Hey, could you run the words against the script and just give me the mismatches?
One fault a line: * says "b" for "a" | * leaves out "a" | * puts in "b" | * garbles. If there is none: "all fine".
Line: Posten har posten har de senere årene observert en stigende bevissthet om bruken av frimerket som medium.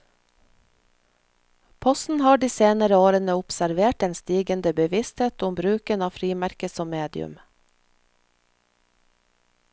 * leaves out "posten har"